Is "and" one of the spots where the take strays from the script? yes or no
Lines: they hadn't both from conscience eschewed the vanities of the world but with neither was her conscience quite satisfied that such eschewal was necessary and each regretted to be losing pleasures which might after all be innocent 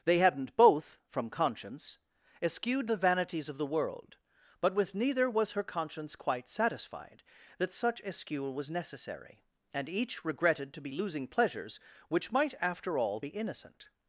no